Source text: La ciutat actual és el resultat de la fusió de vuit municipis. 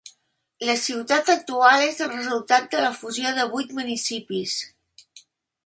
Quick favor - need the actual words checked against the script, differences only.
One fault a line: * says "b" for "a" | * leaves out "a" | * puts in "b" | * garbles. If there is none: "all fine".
all fine